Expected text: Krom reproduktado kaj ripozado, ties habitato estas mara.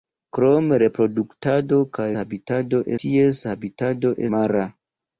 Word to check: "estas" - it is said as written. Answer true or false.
false